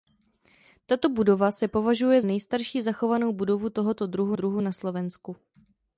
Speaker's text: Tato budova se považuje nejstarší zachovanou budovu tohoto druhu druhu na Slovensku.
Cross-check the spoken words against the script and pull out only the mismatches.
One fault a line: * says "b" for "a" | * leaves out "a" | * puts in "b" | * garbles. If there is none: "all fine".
all fine